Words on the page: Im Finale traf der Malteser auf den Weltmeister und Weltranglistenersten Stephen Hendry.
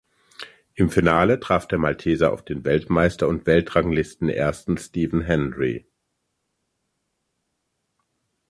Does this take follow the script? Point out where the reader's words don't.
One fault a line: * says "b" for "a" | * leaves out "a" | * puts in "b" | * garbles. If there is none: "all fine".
all fine